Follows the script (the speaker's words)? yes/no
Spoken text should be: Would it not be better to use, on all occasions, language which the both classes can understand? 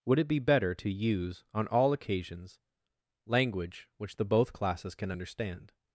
no